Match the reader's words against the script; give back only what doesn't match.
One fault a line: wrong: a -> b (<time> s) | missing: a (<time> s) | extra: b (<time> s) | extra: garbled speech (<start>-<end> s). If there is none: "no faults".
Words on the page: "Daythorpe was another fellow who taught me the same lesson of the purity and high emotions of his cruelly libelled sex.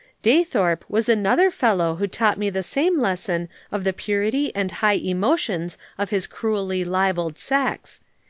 no faults